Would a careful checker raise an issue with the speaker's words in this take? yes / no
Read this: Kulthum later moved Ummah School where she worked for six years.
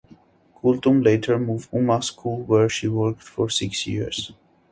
no